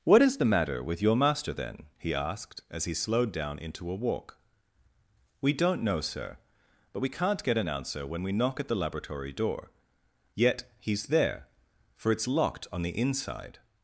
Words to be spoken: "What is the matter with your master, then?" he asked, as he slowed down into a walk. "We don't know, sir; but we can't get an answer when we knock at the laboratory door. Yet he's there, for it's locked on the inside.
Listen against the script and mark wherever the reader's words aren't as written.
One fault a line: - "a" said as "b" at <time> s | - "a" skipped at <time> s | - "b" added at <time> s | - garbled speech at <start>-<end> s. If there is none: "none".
none